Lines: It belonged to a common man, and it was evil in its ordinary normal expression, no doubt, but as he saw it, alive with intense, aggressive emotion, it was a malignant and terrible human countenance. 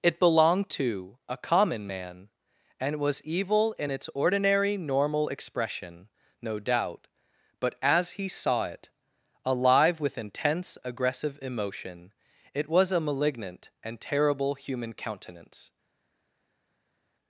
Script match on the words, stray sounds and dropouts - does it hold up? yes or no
no